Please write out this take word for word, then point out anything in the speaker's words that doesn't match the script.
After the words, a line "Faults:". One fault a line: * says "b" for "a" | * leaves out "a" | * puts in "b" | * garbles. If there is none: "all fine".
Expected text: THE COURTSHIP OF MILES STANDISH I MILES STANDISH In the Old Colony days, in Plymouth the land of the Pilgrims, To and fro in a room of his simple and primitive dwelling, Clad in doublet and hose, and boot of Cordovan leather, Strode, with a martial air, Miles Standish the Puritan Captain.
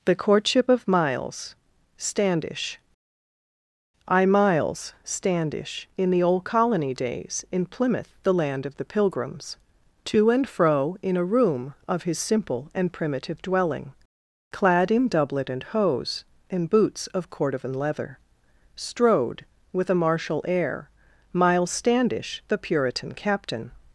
THE COURTSHIP OF MILES STANDISH I MILES STANDISH In the Old Colony days, in Plymouth the land of the Pilgrims, To and fro in a room of his simple and primitive dwelling, Clad in doublet and hose, and boots of Cordovan leather, Strode, with a martial air, Miles Standish the Puritan Captain.
Faults:
* says "boots" for "boot"